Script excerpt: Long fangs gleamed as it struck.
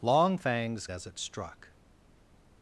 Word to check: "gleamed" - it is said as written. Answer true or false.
false